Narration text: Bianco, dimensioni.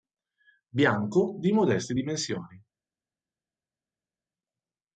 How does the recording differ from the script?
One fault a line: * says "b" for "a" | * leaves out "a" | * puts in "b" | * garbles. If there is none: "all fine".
* puts in "di modeste"